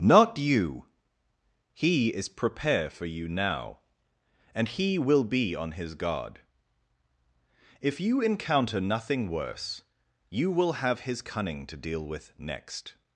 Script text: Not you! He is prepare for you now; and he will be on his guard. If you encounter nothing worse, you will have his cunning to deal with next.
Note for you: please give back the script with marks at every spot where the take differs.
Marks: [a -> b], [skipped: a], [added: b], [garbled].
Not you! He is prepare for you now; and he will be on his guard. If you encounter nothing worse, you will have his cunning to deal with next.